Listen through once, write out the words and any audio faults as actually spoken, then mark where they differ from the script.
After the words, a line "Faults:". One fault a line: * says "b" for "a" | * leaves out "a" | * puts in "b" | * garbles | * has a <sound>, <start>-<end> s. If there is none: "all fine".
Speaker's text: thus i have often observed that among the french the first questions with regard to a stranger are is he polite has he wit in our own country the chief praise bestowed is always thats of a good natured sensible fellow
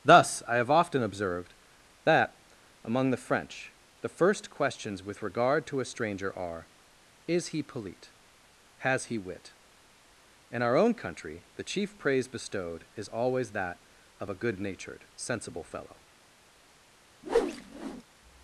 thus i have often observed that among the french the first questions with regard to a stranger are is he polite has he wit in our own country the chief praise bestowed is always that of a good natured sensible fellow
Faults:
* says "that" for "thats"
* has a whoosh, 17.2-18.0 s